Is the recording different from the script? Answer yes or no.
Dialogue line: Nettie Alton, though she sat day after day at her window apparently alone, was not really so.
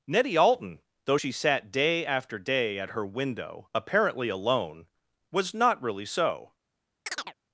no